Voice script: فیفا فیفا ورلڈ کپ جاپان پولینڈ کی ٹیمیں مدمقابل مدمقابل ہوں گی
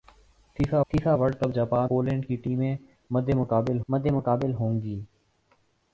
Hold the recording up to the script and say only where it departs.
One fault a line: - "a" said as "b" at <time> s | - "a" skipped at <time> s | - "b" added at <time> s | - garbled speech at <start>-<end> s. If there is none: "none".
none